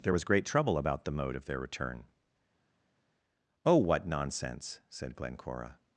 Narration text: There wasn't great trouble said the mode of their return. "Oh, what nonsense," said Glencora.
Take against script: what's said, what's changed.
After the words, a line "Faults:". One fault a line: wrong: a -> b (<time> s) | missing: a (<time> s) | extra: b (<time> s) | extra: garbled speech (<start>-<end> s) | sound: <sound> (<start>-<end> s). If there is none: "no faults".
There was great trouble about the mode of their return. "Oh, what nonsense," said Glencora.
Faults:
wrong: wasn't -> was (0.1 s)
wrong: said -> about (0.8 s)